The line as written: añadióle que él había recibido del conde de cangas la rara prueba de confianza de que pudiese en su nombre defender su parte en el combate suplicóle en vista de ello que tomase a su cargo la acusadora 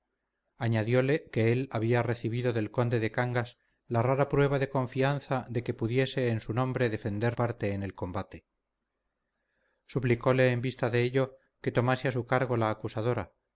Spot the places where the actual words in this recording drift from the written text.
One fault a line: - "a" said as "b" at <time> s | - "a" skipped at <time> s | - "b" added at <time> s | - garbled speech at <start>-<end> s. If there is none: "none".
- "su" skipped at 7.3 s